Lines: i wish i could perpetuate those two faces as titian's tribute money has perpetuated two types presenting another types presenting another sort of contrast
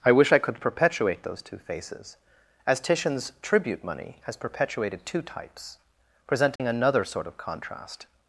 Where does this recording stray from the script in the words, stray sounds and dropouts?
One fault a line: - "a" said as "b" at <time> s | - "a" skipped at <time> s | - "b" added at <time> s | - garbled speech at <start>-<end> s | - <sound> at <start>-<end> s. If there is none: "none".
- dropout at 6.6-6.6 s
- "types presenting another" skipped at 7.0 s